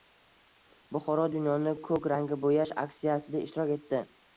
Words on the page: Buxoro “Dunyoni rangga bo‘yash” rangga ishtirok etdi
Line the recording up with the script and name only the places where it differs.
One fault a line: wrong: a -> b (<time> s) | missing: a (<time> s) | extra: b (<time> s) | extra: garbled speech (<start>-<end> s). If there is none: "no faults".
extra: ko‘k (1.9 s)
wrong: rangga -> aksiyasida (2.9 s)